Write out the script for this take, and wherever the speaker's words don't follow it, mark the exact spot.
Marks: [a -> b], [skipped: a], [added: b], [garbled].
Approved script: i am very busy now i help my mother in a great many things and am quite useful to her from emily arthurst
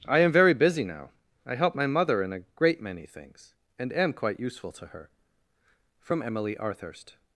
i am very busy now i help my mother in a great many things and am quite useful to her from emily arthurst